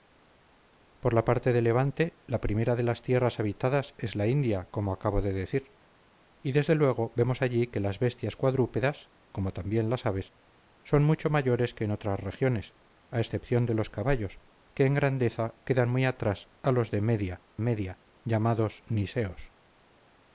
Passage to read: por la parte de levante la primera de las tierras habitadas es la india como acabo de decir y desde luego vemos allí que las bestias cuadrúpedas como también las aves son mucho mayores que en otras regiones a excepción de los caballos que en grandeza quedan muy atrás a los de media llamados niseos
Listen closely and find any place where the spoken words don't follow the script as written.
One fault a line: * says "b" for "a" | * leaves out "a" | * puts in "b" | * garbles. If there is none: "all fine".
* puts in "media"